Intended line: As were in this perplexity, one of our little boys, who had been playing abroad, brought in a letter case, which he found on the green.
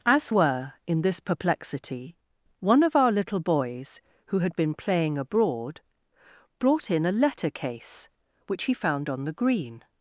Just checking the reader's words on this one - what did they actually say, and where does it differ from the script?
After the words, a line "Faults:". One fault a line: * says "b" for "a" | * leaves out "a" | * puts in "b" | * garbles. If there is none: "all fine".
As were in this perplexity, one of our little boys, who had been playing abroad, brought in a letter case, which he found on the green.
Faults:
all fine